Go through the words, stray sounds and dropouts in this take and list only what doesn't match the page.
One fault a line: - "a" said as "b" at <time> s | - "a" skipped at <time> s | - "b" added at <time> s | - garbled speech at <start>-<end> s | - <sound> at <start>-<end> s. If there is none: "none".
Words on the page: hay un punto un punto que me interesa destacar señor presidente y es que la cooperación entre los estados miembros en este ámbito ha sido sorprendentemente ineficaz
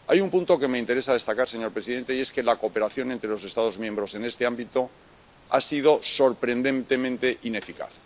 - "un punto" skipped at 0.6 s